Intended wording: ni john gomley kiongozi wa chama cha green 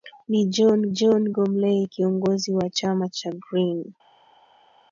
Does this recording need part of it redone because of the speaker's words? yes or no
yes